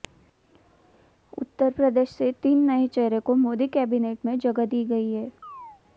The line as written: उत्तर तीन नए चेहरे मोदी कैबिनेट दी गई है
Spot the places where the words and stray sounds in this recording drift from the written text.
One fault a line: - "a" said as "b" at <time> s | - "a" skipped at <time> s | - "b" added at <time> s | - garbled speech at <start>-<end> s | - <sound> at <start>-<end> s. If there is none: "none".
- "प्रदेश से" added at 1.7 s
- "को" added at 3.2 s
- "में जगह" added at 4.2 s
- chirp at 5.4-5.8 s